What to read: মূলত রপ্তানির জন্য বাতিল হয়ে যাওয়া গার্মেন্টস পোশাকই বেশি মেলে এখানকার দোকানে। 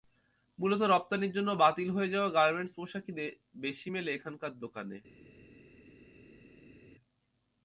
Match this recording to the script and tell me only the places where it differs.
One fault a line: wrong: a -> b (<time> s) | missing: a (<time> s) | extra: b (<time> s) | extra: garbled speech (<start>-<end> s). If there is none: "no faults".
no faults